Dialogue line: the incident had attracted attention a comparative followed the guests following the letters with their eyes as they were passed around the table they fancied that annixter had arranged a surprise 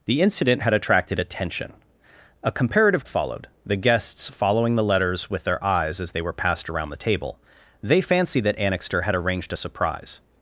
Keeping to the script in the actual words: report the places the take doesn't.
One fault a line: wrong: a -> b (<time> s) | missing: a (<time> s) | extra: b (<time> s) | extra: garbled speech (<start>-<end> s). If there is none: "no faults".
no faults